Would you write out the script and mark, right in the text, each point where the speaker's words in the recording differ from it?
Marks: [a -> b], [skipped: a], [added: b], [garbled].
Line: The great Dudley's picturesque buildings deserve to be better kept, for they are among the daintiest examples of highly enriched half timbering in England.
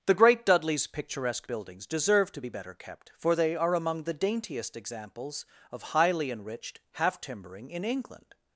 The great Dudley's picturesque buildings deserve to be better kept, for they are among the daintiest examples of highly enriched half timbering in England.